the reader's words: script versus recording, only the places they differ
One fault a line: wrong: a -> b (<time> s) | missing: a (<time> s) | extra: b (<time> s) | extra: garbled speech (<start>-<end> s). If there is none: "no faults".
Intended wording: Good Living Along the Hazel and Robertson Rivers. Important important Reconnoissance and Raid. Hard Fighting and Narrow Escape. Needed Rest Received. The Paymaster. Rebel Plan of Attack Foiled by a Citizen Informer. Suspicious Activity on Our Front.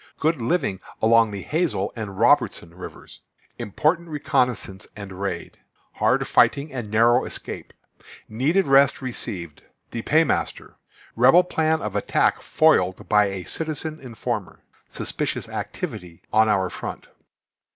missing: important (4.1 s)